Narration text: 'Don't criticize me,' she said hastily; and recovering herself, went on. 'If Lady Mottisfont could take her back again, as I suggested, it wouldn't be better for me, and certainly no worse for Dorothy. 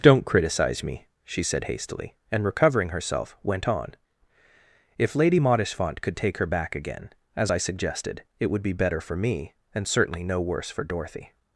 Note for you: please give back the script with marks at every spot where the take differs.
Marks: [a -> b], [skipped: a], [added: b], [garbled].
'Don't criticize me,' she said hastily; and recovering herself, went on. 'If Lady Mottisfont could take her back again, as I suggested, it [wouldn't -> would] be better for me, and certainly no worse for Dorothy.